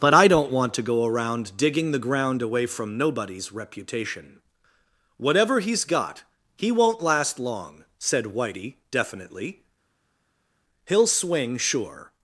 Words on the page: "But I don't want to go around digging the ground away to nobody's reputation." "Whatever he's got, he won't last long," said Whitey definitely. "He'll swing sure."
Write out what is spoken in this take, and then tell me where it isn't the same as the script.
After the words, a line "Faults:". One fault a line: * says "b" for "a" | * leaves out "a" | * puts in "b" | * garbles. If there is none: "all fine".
"But I don't want to go around digging the ground away from nobody's reputation." "Whatever he's got, he won't last long," said Whitey definitely. "He'll swing sure."
Faults:
* says "from" for "to"